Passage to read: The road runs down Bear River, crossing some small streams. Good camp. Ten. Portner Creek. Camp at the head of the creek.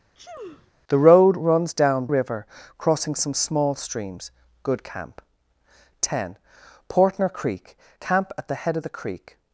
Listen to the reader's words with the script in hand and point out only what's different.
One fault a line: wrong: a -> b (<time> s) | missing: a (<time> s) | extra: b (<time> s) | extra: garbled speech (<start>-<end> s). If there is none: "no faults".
missing: Bear (2.1 s)